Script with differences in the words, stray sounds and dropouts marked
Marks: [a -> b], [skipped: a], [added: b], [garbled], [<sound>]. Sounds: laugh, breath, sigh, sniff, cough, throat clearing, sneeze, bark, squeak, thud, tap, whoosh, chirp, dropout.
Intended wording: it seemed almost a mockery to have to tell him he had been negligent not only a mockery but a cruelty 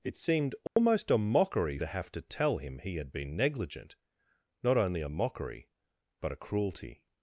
it seemed almost [dropout] a mockery to have to tell him he had been negligent not only a mockery but a cruelty